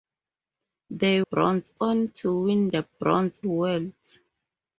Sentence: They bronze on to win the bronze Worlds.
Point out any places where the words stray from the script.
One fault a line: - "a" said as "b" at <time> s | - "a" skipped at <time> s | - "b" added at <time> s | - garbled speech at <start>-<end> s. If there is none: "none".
none